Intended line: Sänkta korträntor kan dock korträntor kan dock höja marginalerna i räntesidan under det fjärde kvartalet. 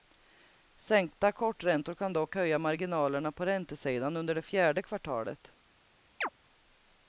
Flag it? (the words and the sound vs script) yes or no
yes